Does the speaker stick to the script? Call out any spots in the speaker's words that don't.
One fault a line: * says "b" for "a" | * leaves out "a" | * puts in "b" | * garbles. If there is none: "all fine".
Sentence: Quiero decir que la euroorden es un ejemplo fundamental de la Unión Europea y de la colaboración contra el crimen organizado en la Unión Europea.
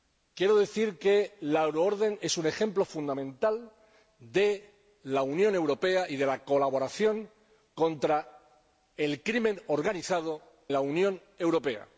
* leaves out "en"